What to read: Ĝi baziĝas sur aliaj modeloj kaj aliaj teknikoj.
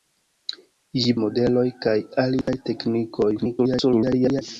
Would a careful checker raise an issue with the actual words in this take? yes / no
yes